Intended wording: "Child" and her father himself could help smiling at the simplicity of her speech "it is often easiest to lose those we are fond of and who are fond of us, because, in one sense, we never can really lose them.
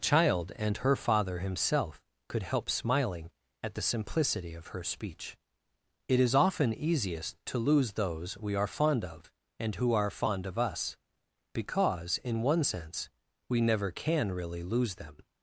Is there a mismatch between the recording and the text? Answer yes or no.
no